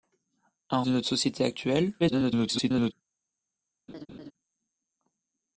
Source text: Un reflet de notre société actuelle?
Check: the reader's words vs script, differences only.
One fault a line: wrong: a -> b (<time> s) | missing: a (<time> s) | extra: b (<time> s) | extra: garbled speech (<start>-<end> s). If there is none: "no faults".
missing: reflet (0.8 s)
extra: garbled speech (2.0-2.9 s)